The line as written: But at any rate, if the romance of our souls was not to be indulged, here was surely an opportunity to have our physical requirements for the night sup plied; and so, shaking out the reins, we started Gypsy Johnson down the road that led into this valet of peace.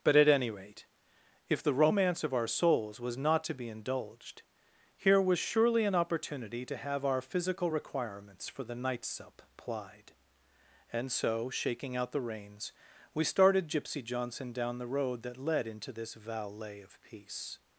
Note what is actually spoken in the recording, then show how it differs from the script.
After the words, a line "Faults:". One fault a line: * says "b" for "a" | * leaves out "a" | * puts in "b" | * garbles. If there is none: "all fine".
But at any rate, if the romance of our souls was not to be indulged, here was surely an opportunity to have our physical requirements for the night sup plied; and so, shaking out the reins, we started Gypsy Johnson down the road that led into this valet of peace.
Faults:
all fine